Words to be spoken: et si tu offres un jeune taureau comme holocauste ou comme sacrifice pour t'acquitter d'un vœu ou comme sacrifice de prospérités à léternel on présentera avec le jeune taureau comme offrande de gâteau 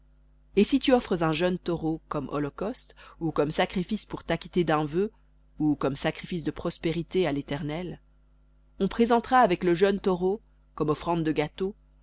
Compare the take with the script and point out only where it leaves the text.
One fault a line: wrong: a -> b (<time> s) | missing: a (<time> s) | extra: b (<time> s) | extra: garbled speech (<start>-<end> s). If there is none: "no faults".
no faults